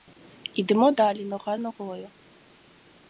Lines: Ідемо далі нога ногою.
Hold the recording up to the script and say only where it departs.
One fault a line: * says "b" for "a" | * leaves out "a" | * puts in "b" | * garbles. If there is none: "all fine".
all fine